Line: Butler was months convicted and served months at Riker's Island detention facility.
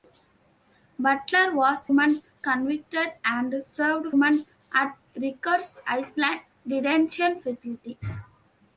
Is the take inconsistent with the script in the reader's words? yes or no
no